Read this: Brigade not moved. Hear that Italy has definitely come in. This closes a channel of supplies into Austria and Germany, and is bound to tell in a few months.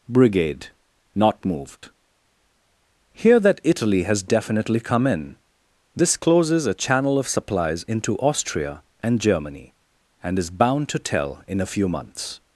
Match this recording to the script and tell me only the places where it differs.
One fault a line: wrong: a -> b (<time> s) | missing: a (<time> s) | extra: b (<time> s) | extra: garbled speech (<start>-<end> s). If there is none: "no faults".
no faults